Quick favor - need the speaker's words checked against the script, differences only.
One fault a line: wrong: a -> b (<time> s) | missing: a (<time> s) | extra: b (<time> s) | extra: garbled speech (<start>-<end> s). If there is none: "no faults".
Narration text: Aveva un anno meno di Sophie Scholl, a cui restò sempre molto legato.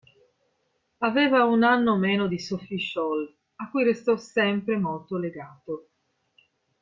no faults